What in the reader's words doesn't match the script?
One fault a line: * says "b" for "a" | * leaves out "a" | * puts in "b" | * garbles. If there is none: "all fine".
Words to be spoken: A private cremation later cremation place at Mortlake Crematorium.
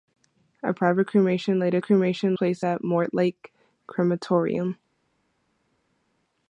all fine